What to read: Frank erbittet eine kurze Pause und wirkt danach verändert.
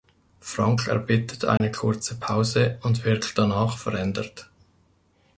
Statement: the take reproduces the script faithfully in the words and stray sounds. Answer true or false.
false